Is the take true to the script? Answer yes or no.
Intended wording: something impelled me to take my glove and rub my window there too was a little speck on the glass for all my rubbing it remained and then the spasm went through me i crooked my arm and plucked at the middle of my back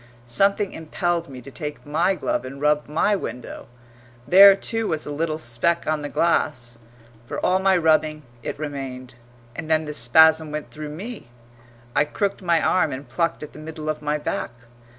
yes